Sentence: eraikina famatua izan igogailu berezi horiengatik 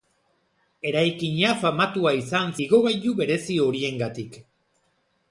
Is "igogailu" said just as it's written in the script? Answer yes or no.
yes